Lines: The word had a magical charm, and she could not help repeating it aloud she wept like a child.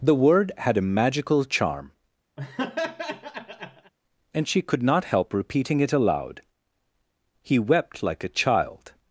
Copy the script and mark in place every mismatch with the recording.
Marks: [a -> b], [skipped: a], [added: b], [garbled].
The word had a magical charm, and she could not help repeating it aloud [she -> he] wept like a child.